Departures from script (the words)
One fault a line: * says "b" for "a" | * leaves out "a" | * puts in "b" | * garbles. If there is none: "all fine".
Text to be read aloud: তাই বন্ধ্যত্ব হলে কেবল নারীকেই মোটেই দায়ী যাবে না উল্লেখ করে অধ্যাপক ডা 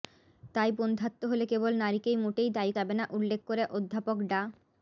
all fine